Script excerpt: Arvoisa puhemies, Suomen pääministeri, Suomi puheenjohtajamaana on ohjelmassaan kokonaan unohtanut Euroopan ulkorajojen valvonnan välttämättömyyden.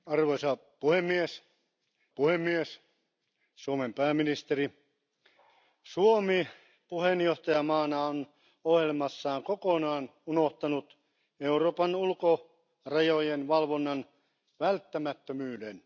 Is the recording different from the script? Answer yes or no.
yes